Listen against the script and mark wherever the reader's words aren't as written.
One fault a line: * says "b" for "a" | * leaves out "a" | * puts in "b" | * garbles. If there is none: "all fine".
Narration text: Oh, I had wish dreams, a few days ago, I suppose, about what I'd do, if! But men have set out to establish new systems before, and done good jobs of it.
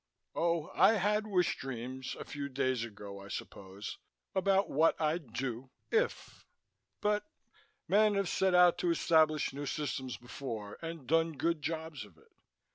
all fine